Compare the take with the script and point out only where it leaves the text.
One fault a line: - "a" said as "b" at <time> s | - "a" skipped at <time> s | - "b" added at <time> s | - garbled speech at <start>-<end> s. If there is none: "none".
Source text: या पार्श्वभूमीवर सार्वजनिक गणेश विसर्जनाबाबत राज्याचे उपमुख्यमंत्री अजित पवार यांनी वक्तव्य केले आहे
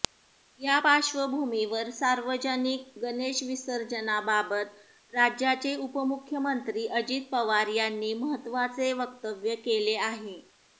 - "महत्त्वाचे" added at 8.2 s